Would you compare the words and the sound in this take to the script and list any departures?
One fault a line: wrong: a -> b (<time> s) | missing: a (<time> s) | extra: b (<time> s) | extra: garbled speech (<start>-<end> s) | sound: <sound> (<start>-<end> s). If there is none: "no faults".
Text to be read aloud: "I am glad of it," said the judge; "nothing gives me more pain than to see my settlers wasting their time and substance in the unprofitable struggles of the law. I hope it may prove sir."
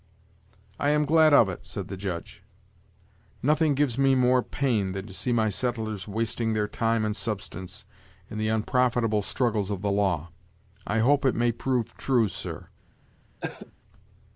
extra: true (12.0 s)
sound: cough (13.4-13.7 s)